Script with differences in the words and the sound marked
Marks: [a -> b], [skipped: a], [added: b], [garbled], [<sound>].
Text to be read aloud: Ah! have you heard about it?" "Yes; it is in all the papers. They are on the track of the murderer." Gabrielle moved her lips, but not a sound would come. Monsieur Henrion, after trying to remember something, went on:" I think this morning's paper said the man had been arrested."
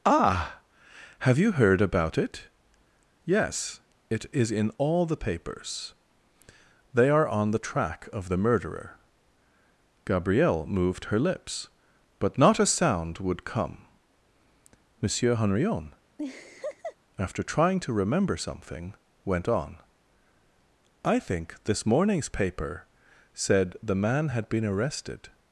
Ah! have you heard about it?" "Yes; it is in all the papers. They are on the track of the murderer." Gabrielle moved her lips, but not a sound would come. Monsieur Henrion, [laugh] after trying to remember something, went on:" I think this morning's paper said the man had been arrested."